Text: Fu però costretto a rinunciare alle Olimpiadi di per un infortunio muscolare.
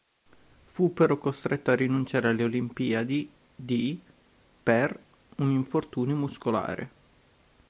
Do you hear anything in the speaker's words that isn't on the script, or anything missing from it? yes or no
no